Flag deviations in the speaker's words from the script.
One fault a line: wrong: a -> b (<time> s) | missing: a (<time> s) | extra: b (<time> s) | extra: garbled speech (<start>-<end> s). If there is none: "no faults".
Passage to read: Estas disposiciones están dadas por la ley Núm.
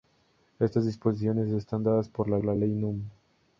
extra: la (2.4 s)